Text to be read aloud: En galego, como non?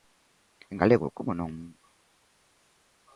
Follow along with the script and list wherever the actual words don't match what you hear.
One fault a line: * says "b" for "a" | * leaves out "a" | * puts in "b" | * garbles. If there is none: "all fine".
all fine